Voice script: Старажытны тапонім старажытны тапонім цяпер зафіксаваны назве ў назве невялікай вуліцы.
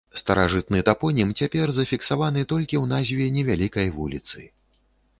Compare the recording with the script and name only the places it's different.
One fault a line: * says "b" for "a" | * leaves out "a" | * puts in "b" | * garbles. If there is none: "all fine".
* leaves out "старажытны тапонім"
* says "толькі" for "назве"